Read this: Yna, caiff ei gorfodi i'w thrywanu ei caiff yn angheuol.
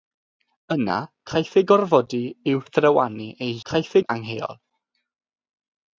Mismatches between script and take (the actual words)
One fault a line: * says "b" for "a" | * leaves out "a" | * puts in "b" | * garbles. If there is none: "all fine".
all fine